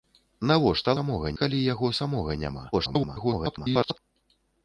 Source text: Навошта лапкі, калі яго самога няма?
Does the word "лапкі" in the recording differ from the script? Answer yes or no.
yes